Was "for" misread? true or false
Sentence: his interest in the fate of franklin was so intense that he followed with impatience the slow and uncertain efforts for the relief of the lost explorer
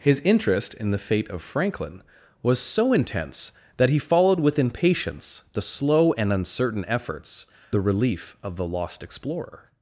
true